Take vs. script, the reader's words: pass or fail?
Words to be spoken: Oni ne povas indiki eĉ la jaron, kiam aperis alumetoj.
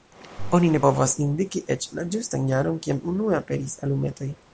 fail